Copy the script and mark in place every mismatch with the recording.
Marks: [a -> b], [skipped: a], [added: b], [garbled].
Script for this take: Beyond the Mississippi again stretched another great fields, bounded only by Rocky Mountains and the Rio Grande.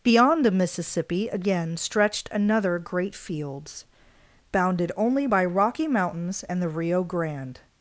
Beyond the Mississippi again stretched another great fields, bounded only by Rocky Mountains and the Rio Grande.